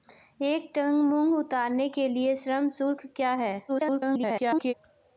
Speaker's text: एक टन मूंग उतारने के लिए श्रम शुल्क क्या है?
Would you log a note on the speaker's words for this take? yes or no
yes